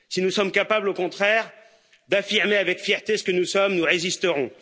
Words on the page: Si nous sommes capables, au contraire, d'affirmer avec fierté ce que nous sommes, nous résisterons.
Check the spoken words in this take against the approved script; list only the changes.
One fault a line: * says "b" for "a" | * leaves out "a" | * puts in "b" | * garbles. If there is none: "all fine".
all fine